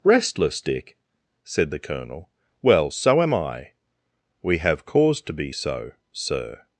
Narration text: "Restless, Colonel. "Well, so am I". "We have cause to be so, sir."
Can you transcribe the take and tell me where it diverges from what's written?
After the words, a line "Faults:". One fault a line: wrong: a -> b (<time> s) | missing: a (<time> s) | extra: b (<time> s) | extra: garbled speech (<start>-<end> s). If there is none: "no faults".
"Restless, Dick?" said the Colonel. "Well, so am I". "We have cause to be so, sir."
Faults:
extra: Dick said the (0.6 s)